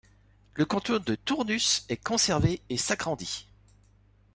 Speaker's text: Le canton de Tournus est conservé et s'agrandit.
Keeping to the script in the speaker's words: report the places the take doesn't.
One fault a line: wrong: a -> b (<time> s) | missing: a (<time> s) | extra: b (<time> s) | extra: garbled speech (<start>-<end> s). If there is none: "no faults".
no faults